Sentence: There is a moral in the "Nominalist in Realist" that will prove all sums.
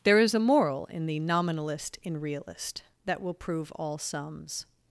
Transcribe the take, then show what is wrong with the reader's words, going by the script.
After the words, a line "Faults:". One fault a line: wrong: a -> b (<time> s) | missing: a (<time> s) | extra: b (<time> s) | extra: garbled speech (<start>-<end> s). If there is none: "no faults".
There is a moral in the "Nominalist in Realist" that will prove all sums.
Faults:
no faults